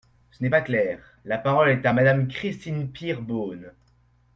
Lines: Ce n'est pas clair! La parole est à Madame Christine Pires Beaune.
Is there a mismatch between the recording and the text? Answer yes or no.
no